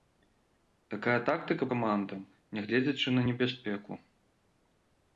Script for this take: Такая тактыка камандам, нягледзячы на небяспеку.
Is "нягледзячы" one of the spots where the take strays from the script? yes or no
no